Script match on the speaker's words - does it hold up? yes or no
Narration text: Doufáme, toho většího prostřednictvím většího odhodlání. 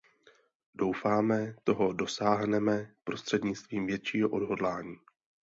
no